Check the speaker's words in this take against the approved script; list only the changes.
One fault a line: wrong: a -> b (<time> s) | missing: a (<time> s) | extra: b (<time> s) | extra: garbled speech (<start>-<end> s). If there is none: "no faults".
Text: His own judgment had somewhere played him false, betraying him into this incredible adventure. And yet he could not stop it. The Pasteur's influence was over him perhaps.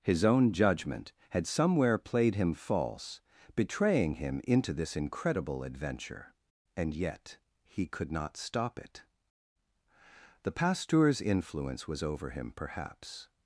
no faults